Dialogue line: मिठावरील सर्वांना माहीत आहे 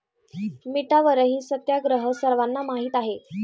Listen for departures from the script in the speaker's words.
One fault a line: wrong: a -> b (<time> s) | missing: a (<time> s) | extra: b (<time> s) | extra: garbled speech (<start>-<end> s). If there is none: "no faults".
extra: सत्याग्रह (1.4 s)